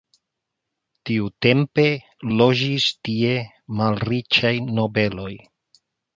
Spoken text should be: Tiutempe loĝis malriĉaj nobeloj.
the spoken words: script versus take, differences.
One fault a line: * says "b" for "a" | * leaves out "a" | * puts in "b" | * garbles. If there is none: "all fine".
* puts in "tie"